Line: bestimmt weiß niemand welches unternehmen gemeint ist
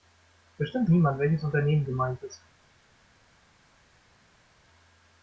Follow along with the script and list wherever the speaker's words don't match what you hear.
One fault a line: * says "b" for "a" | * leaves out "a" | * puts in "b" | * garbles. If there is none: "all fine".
* leaves out "weiß"